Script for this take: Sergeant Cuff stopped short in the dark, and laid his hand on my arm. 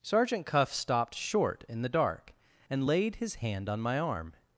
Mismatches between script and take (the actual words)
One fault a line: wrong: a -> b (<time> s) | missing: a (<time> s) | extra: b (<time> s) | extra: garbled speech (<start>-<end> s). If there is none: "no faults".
no faults